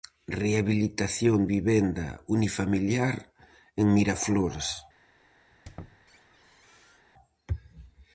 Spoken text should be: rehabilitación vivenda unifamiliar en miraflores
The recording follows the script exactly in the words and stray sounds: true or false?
false